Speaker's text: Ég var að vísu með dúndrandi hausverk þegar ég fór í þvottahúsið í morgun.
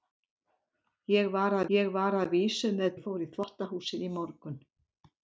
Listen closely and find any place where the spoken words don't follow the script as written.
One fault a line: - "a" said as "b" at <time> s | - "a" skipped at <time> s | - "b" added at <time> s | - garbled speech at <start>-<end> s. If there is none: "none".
- "vísu með dúndrandi hausverk þegar" said as "ég var að vísu með" at 1.8 s